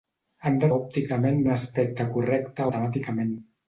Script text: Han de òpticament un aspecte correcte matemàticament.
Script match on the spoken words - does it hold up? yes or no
yes